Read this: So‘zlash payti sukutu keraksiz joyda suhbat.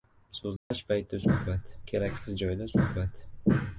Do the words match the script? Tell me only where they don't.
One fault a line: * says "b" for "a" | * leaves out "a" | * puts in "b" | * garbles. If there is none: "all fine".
* says "suhbat" for "sukutu"